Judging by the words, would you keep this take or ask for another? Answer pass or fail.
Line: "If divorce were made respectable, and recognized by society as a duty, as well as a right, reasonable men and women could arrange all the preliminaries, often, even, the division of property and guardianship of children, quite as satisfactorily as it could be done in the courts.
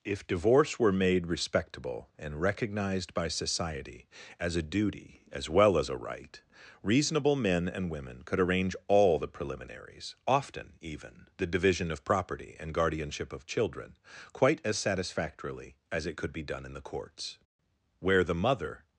fail